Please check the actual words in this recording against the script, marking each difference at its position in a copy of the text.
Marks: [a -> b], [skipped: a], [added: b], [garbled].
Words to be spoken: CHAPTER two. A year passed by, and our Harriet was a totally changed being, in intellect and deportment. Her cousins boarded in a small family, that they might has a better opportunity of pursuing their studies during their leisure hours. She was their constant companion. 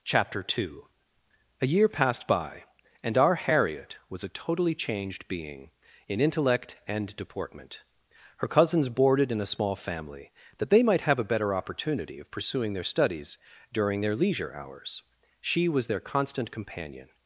CHAPTER two. A year passed by, and our Harriet was a totally changed being, in intellect and deportment. Her cousins boarded in a small family, that they might [has -> have] a better opportunity of pursuing their studies during their leisure hours. She was their constant companion.